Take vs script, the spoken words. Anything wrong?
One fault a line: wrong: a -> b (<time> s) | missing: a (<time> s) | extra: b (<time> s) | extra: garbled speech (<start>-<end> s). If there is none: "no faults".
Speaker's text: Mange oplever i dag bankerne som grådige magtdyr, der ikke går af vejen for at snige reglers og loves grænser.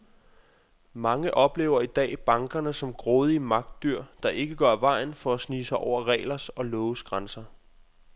extra: sig over (5.7 s)